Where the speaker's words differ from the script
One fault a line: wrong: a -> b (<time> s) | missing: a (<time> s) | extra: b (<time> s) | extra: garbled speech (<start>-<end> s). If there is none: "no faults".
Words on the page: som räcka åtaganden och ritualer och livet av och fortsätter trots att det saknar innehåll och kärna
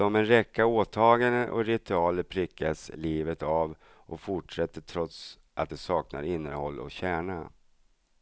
extra: en (0.1 s)
wrong: och -> prickas (2.2 s)